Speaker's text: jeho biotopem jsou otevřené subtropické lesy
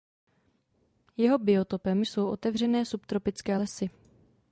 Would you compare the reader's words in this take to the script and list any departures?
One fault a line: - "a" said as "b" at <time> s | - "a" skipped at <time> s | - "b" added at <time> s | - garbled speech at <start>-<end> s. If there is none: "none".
none